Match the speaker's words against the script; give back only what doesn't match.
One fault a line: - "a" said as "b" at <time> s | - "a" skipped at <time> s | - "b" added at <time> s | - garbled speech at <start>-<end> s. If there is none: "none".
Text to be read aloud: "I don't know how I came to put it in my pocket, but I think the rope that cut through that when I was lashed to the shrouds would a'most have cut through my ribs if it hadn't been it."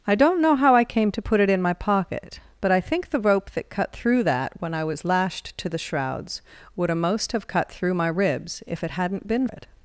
none